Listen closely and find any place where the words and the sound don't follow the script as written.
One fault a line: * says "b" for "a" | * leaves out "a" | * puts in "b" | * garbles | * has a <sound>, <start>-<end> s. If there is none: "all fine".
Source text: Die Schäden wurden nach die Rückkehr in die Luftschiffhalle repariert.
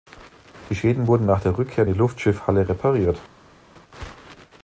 * says "der" for "die"